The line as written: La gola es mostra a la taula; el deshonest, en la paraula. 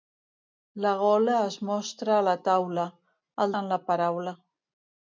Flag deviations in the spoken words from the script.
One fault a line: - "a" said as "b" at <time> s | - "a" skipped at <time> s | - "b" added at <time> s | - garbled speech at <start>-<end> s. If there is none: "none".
- "deshonest" skipped at 3.5 s